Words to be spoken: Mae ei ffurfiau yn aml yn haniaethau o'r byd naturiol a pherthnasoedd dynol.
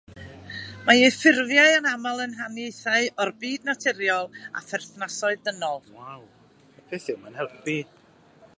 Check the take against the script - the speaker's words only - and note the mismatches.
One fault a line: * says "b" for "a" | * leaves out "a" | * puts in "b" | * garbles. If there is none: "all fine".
all fine